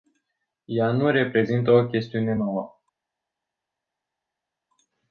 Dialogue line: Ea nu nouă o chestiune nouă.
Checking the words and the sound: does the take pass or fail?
fail